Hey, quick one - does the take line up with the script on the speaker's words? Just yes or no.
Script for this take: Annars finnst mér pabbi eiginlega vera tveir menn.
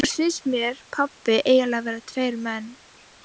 yes